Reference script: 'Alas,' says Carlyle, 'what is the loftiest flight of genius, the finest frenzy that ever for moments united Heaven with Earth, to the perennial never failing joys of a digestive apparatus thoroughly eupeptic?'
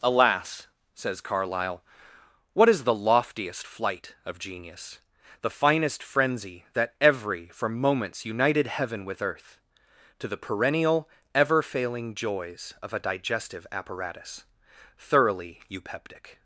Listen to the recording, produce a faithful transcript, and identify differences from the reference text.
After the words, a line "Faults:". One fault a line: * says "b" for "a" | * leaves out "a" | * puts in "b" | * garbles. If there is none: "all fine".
'Alas,' says Carlyle, 'what is the loftiest flight of genius, the finest frenzy that every for moments united Heaven with Earth, to the perennial ever failing joys of a digestive apparatus thoroughly eupeptic?'
Faults:
* says "every" for "ever"
* says "ever" for "never"